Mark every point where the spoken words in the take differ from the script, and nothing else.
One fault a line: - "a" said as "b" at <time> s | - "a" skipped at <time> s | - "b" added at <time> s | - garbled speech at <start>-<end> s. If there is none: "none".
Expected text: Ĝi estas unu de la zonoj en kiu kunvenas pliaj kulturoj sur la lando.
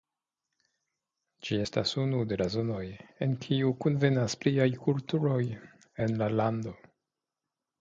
- "sur" said as "en" at 6.1 s